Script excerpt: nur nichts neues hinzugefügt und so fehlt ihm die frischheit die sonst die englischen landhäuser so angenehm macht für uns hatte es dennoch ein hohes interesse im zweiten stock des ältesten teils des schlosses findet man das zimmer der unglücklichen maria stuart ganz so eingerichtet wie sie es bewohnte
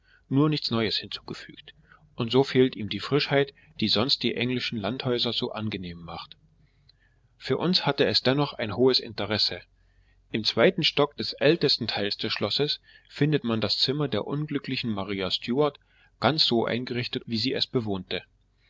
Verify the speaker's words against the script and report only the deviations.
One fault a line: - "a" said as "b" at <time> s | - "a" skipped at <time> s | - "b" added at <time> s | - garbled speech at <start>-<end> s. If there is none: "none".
none